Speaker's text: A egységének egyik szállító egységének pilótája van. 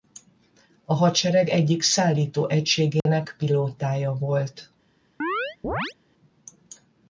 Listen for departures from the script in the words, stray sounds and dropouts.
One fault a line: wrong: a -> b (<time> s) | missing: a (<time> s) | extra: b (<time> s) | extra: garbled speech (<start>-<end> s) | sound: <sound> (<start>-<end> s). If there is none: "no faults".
wrong: egységének -> hadsereg (0.9 s)
sound: dropout (3.0-3.1 s)
wrong: van -> volt (4.1 s)
sound: chirp (5.2-5.9 s)